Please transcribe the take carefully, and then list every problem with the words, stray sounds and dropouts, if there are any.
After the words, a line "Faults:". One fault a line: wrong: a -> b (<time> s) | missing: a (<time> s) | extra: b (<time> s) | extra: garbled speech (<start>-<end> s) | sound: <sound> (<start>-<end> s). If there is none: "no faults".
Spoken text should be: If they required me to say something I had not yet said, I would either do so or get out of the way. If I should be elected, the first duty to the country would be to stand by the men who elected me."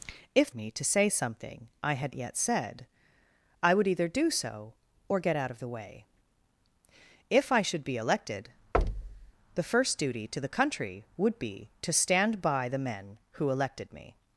If me to say something I had yet said, I would either do so or get out of the way. If I should be elected, the first duty to the country would be to stand by the men who elected me."
Faults:
missing: they required (0.5 s)
missing: not (2.1 s)
sound: thud (8.7-9.3 s)